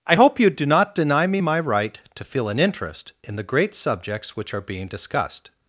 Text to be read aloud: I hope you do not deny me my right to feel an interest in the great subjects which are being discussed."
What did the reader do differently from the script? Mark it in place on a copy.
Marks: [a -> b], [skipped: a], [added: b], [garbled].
I hope you do not deny me my right to feel an interest in the great subjects which are being discussed."